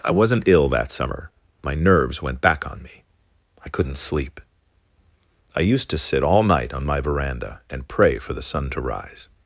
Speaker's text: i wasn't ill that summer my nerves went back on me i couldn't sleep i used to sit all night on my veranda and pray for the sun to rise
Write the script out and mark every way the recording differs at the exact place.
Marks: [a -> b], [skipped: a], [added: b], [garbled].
i wasn't ill that summer my nerves went back on me i couldn't sleep i used to sit all night on my veranda and pray for the sun to rise